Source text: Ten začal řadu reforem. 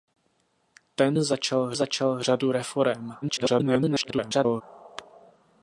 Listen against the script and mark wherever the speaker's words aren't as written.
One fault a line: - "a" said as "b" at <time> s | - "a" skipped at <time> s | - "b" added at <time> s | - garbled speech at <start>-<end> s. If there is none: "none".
- "začal" added at 1.7 s
- garbled speech at 3.2-4.6 s